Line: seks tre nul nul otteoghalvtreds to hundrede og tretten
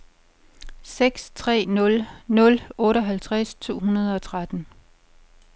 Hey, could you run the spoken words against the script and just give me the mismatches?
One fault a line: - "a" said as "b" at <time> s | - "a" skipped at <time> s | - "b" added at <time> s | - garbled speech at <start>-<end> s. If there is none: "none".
none